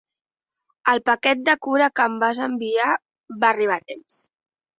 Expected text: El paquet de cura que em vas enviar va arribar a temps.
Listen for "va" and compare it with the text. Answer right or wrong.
right